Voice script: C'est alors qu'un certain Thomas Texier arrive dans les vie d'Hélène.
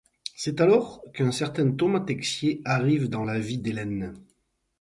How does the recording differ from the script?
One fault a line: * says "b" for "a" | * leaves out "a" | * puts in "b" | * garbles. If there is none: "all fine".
* says "la" for "les"